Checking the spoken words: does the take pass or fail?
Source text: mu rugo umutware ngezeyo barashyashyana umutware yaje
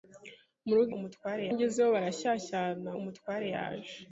pass